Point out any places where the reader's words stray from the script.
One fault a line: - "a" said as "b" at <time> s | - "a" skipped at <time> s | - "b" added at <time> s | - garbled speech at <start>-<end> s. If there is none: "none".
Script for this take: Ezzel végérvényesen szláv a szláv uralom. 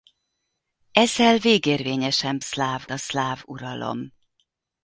none